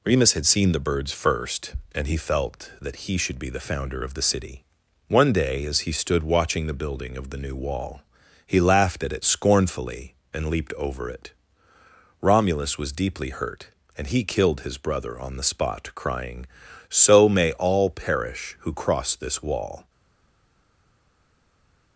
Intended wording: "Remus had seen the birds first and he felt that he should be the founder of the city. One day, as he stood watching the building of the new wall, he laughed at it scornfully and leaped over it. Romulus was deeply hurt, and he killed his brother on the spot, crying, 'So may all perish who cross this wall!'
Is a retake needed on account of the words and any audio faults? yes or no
no